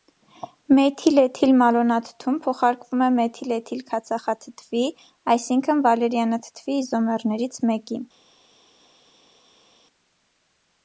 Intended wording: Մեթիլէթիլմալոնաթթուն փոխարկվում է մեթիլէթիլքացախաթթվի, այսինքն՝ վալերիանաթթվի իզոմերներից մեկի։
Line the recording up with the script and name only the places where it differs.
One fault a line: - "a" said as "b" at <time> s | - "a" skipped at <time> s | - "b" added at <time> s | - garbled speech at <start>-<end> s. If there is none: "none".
none